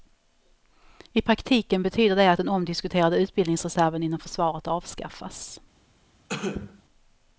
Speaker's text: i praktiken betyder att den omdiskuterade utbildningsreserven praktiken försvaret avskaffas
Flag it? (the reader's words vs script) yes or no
yes